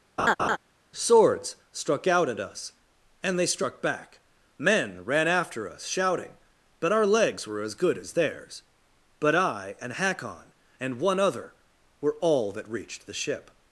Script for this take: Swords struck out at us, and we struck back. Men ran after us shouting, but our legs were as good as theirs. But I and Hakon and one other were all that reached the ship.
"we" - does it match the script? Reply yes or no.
no